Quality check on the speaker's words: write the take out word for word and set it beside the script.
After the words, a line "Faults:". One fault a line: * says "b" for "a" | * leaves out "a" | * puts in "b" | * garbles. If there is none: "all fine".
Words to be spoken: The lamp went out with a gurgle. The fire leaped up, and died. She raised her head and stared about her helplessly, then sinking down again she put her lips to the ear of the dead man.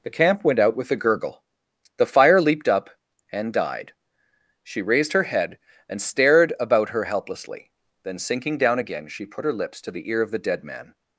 The camp went out with a gurgle. The fire leaped up, and died. She raised her head and stared about her helplessly, then sinking down again she put her lips to the ear of the dead man.
Faults:
* says "camp" for "lamp"